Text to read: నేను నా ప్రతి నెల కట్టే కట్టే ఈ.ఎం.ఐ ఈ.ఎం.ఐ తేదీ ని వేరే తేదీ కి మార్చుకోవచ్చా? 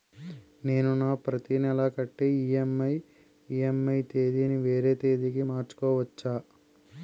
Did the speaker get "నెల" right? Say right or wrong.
right